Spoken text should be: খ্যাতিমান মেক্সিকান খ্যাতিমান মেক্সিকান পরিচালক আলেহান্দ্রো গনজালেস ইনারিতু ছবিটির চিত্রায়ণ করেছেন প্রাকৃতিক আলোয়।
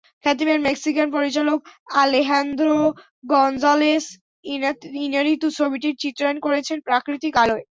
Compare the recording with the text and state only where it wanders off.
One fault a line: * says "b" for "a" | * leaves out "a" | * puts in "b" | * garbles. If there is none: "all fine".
* leaves out "খ্যাতিমান মেক্সিকান"